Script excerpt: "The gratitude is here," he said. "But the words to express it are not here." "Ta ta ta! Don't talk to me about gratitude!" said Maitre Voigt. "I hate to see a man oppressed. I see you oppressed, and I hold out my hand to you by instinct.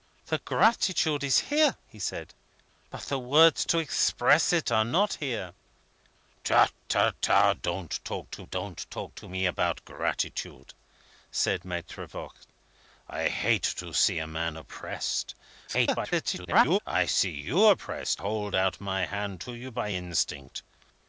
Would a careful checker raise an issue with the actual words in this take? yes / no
yes